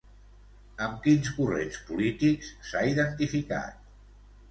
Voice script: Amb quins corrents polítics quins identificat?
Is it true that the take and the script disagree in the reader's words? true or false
true